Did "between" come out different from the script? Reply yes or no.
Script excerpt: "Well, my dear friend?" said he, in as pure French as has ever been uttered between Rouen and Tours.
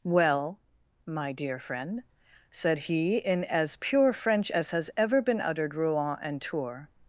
yes